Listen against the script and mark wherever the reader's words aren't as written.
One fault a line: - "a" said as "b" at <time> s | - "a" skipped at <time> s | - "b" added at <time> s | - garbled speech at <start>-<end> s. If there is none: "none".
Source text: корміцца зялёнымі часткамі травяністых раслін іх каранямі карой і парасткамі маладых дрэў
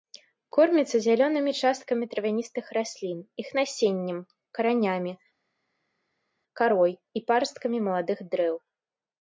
- "насеннем" added at 3.6 s